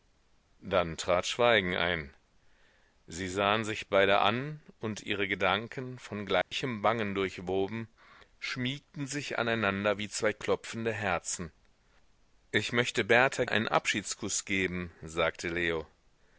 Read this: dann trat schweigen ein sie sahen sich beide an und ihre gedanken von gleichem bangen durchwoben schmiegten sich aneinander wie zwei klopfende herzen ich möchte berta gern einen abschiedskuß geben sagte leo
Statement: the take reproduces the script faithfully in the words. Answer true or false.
false